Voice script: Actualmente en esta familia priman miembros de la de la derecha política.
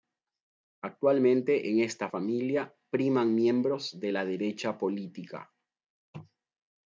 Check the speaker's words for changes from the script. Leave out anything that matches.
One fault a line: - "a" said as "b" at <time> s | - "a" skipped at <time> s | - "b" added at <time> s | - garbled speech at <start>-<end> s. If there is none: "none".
- "de la" skipped at 4.2 s